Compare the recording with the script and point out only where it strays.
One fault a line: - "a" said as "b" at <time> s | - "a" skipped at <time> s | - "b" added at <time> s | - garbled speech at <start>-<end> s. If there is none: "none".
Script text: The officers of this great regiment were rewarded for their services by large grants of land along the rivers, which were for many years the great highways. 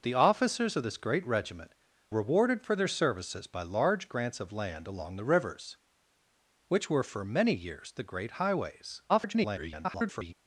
- "were" skipped at 1.7 s
- garbled speech at 9.1-10.3 s